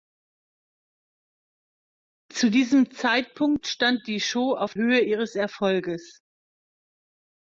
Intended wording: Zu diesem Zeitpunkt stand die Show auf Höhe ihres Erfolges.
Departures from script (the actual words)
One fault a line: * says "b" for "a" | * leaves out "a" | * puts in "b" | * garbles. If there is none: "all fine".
all fine